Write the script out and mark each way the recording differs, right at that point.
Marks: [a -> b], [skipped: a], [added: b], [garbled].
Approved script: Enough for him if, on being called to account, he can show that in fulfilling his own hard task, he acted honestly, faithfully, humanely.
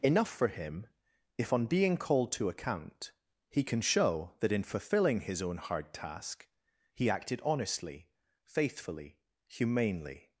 Enough for him if, on being called to account, he can show that in fulfilling his own hard task, he acted honestly, faithfully, humanely.